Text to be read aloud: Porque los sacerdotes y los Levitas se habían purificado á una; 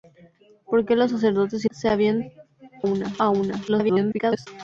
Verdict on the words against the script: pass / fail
fail